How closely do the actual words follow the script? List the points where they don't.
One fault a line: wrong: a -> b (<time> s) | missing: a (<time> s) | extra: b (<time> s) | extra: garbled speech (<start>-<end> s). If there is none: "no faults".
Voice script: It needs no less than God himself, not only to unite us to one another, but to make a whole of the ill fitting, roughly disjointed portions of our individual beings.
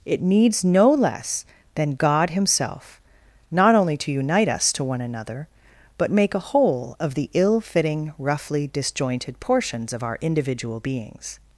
missing: to (6.1 s)